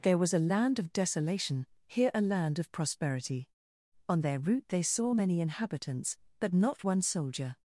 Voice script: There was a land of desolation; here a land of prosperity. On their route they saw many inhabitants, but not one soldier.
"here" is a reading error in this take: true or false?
false